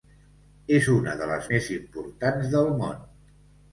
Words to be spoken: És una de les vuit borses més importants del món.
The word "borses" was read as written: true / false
false